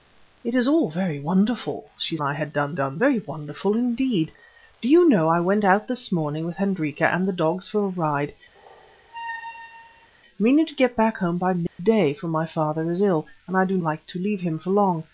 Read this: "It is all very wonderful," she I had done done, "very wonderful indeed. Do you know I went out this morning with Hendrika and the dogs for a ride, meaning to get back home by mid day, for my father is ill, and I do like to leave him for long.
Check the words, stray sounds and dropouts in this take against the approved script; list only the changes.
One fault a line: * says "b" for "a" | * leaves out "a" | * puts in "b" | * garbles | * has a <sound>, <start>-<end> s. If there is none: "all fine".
* has a squeak, 8.5-10.1 s
* has a dropout, 11.7-11.8 s